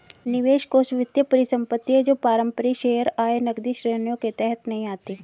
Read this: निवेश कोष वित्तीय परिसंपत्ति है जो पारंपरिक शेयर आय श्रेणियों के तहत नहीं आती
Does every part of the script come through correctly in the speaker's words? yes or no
no